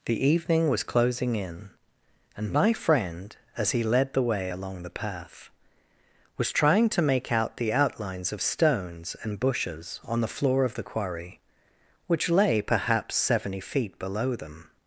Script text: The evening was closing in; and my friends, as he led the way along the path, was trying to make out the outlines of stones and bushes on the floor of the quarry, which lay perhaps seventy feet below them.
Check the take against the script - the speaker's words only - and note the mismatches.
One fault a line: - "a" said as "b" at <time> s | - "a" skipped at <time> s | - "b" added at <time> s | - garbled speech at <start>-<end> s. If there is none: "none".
- "friends" said as "friend" at 2.7 s